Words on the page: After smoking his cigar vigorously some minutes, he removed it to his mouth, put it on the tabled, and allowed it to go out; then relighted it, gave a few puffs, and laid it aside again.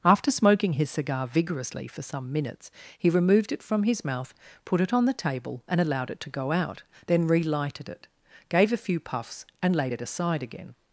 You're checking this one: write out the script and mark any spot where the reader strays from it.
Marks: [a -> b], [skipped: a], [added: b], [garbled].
After smoking his cigar vigorously [added: for] some minutes, he removed it [to -> from] his mouth, put it on the [tabled, -> table] and allowed it to go out; then relighted it, gave a few puffs, and laid it aside again.